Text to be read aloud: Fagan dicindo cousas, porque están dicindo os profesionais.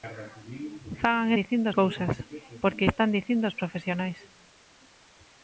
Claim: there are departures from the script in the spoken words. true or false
false